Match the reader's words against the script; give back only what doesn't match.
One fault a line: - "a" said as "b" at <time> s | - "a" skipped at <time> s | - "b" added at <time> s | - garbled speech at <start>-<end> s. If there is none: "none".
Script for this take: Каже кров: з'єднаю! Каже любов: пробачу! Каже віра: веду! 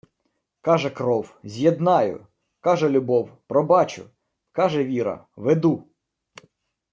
none